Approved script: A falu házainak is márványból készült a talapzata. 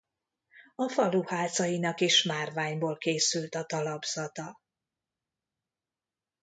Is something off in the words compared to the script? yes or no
no